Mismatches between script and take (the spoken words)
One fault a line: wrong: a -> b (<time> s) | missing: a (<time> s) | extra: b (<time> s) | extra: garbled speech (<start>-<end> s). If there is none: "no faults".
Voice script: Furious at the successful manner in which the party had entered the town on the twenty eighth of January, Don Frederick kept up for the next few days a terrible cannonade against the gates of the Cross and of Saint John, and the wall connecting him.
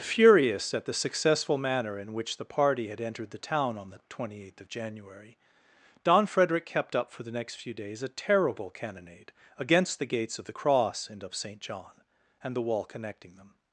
wrong: him -> them (13.3 s)